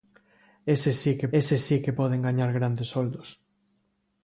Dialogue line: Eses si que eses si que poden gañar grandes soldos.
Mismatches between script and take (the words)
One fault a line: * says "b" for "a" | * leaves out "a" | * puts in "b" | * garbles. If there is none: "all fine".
all fine